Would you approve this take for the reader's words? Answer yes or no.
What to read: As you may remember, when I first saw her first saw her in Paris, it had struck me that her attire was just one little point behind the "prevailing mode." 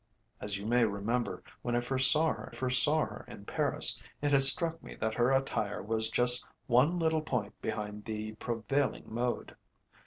yes